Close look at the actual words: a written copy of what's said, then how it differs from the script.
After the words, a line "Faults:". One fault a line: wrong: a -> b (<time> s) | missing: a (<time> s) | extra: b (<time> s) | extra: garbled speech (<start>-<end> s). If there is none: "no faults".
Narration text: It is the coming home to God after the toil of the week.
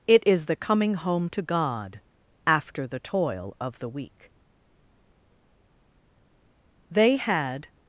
It is the coming home to God after the toil of the week. They had
Faults:
extra: They had (6.9 s)